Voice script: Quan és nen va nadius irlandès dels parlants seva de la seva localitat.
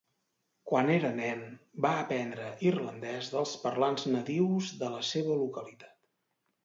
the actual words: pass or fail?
fail